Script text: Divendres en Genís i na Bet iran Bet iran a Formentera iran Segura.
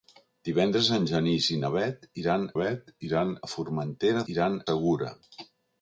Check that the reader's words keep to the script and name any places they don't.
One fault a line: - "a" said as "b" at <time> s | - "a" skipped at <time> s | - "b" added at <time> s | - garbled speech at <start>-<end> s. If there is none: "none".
none